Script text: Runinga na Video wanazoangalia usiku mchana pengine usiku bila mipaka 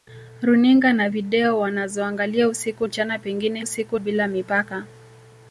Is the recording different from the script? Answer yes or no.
no